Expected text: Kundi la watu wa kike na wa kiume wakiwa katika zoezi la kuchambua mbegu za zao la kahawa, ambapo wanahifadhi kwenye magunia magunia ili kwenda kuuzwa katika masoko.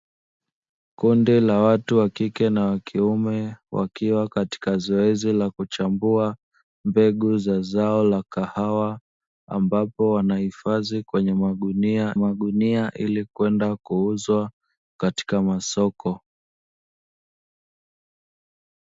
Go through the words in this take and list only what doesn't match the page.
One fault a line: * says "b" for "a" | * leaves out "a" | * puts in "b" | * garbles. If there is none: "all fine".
all fine